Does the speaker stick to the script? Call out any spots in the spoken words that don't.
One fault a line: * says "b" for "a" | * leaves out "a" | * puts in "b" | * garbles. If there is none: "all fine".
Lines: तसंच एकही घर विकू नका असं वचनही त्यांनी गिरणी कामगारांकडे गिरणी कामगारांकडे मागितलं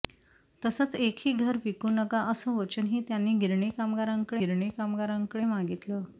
all fine